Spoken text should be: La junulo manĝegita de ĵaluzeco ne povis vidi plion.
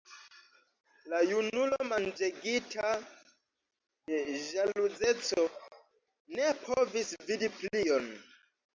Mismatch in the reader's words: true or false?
false